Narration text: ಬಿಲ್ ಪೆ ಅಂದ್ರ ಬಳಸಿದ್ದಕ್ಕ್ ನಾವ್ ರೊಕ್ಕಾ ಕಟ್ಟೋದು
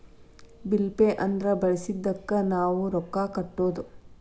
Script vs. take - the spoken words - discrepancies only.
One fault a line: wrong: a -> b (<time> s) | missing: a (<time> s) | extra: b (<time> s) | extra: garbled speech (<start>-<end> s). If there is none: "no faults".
no faults